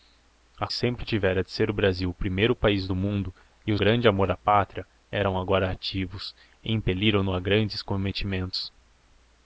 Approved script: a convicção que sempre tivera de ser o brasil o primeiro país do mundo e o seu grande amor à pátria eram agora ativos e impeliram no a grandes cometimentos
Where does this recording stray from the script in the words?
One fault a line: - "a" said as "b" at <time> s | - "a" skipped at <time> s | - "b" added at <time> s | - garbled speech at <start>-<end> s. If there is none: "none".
- "convicção que" skipped at 0.7 s
- "seu" skipped at 3.8 s